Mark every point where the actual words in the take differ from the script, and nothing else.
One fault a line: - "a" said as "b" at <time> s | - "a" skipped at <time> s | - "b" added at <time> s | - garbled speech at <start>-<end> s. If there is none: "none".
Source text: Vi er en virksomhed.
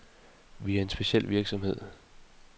- "speciel" added at 0.9 s